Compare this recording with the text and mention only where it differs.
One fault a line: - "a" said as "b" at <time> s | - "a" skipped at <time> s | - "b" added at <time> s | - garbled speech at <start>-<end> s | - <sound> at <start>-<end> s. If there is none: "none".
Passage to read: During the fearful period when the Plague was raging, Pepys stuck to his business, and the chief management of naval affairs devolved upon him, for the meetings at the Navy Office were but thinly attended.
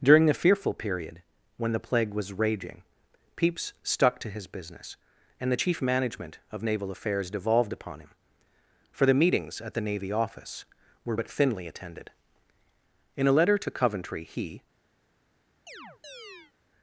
- "In a letter to Coventry he" added at 13.2 s
- chirp at 15.7-16.5 s